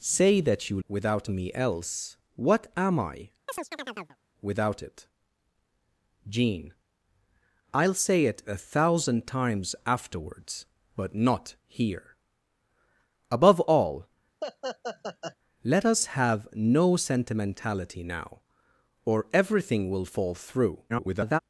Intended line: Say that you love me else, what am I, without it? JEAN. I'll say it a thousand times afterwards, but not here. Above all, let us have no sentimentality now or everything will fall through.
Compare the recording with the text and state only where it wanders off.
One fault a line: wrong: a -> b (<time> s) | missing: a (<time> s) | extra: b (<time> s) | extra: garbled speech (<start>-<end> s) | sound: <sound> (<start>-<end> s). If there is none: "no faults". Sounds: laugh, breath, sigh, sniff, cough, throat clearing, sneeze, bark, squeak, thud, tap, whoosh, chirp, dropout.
wrong: love -> without (0.9 s)
sound: chirp (3.5-4.2 s)
sound: laugh (14.4-15.4 s)
extra: garbled speech (20.9-21.4 s)